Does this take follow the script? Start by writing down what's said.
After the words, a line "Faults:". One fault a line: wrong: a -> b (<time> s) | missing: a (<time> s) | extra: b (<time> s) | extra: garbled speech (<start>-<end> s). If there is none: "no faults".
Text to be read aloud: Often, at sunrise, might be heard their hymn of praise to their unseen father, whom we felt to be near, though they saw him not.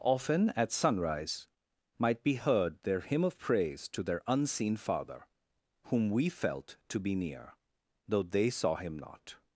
Often, at sunrise, might be heard their hymn of praise to their unseen father, whom we felt to be near, though they saw him not.
Faults:
no faults